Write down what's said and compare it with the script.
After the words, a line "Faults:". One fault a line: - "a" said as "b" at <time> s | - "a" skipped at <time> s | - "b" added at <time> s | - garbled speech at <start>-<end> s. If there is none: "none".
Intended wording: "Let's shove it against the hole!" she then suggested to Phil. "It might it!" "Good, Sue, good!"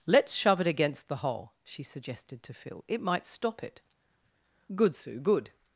"Let's shove it against the hole!" she suggested to Phil. "It might stop it!" "Good, Sue, good!"
Faults:
- "then" skipped at 1.8 s
- "stop" added at 3.2 s